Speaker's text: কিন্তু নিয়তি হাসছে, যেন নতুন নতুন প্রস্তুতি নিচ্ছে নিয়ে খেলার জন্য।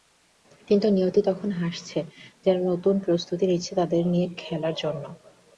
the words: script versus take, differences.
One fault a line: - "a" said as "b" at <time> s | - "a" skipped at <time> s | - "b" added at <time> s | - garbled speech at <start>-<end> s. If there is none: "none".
- "তখন" added at 1.2 s
- "নতুন" skipped at 3.0 s
- "তাদের" added at 3.8 s